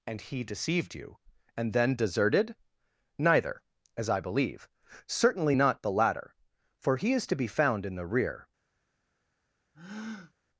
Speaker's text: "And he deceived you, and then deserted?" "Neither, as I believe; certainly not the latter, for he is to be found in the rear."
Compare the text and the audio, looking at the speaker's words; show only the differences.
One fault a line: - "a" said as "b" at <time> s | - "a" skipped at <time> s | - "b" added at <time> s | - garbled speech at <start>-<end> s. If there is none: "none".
none